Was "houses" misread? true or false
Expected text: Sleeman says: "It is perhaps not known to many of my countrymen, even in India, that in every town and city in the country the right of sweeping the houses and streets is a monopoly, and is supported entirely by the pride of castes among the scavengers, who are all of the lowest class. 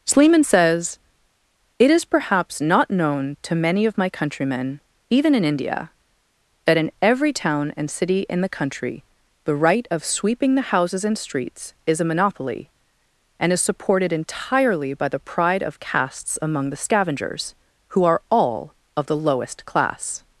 false